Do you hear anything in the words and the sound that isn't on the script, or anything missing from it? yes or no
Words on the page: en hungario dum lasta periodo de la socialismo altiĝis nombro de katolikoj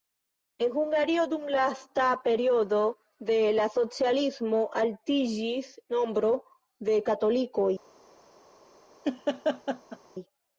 yes